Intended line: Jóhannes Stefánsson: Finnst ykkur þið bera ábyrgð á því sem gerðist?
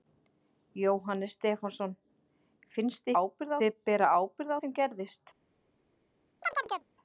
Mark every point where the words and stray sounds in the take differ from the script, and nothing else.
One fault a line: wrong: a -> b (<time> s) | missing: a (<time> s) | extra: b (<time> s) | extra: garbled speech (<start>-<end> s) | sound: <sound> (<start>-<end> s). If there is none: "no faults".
wrong: ykkur -> ábyrgð (3.2 s)
missing: því (4.6 s)
sound: chirp (6.4-6.9 s)